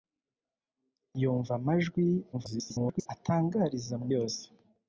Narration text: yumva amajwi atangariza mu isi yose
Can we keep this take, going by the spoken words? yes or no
no